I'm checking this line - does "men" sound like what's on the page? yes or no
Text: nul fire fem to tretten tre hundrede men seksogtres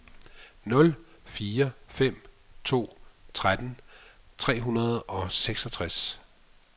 no